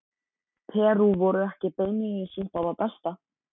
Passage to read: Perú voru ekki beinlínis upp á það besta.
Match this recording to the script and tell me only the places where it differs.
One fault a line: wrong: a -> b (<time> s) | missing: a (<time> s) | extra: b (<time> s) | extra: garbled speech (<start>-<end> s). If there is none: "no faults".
no faults